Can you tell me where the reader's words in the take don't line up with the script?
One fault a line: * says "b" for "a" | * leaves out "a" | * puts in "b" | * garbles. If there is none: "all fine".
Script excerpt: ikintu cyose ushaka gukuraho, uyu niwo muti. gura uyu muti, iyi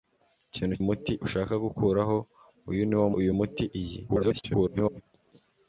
* says "muti" for "cyose"
* leaves out "muti gura"
* garbles